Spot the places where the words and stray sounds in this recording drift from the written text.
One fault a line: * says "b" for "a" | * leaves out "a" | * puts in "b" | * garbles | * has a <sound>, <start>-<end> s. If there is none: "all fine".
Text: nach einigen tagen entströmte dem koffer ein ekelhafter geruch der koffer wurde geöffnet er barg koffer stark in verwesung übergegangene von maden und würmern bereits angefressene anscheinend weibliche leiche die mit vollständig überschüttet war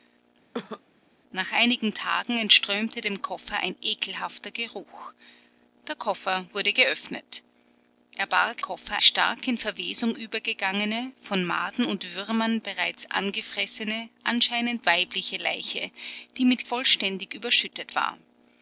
* has a cough, 0.5-0.8 s